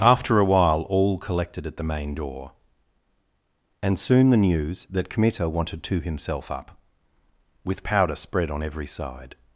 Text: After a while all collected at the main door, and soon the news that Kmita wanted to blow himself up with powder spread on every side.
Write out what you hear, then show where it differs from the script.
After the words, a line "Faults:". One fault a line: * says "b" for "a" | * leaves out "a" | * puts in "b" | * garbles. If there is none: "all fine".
After a while all collected at the main door, and soon the news that Kmita wanted to himself up with powder spread on every side.
Faults:
* leaves out "blow"